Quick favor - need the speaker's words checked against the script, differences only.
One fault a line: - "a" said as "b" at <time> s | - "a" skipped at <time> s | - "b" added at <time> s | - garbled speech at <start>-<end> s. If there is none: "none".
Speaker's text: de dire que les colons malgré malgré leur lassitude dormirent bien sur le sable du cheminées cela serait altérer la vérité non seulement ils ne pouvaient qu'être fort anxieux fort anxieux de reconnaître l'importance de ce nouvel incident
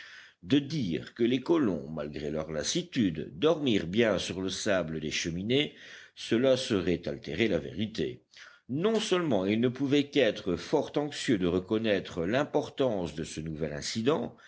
- "malgré" skipped at 2.3 s
- "du" said as "des" at 5.0 s
- "fort anxieux" skipped at 11.4 s